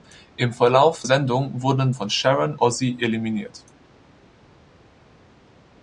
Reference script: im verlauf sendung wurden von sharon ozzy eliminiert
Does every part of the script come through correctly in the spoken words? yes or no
yes